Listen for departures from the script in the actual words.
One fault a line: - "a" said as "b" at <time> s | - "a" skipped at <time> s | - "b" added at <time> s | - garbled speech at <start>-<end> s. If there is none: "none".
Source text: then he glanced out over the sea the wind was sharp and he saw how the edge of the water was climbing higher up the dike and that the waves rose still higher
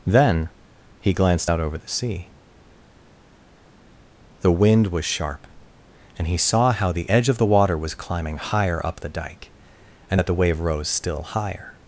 - "waves" said as "wave" at 10.3 s